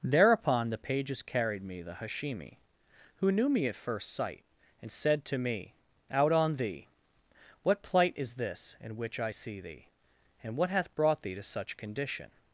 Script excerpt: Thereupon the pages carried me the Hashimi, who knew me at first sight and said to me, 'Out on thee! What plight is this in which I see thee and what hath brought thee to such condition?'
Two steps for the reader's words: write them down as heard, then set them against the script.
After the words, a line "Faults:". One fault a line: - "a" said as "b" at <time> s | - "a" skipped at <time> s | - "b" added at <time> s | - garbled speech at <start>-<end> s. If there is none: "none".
Thereupon the pages carried me the Hashimi, who knew me at first sight and said to me, 'Out on thee! What plight is this in which I see thee and what hath brought thee to such condition?'
Faults:
none